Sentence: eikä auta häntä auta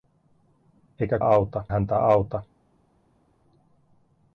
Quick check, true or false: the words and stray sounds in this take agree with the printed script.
true